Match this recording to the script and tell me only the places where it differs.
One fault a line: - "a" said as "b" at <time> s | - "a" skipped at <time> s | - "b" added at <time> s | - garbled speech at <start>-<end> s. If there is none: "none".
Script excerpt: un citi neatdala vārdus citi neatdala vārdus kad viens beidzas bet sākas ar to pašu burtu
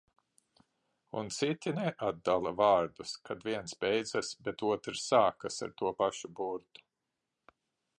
- "citi neatdala vārdus" skipped at 3.2 s
- "otrs" added at 4.7 s